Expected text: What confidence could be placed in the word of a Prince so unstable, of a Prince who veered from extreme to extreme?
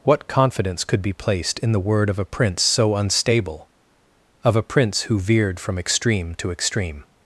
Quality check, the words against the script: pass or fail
pass